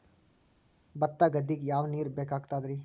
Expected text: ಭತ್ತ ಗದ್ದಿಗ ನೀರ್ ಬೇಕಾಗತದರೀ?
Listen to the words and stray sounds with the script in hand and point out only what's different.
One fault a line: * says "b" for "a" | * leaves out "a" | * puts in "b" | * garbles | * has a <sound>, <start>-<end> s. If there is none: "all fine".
* puts in "ಯಾವ"